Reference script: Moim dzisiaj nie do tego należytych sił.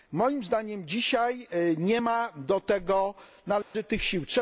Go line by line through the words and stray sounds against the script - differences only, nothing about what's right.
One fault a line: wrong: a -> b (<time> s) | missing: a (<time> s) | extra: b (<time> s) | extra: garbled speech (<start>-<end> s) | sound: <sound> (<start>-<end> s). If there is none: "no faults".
extra: zdaniem (0.4 s)
extra: ma (2.0 s)
sound: dropout (3.6-3.7 s)